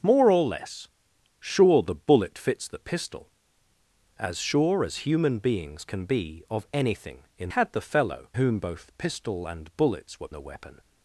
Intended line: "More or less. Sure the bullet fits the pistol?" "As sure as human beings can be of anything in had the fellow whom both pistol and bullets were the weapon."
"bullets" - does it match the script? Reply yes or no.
yes